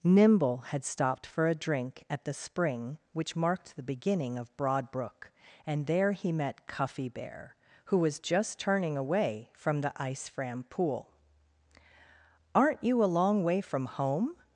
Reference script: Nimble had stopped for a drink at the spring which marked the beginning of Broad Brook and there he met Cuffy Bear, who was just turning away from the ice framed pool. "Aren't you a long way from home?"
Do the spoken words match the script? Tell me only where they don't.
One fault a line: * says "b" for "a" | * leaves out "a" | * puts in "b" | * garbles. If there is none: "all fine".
* says "fram" for "framed"